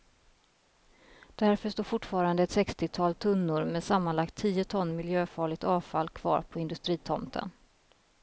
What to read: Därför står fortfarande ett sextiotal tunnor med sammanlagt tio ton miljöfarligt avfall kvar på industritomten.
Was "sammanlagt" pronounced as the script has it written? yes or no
yes